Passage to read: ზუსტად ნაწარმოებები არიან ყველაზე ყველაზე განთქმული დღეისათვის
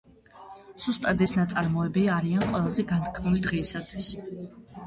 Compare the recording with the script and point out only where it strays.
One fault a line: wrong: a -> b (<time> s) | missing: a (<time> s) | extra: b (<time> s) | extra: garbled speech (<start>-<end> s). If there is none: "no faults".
extra: ეს (1.2 s)
missing: ყველაზე (2.9 s)